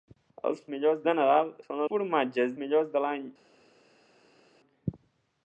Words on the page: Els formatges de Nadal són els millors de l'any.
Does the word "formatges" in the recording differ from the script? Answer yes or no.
yes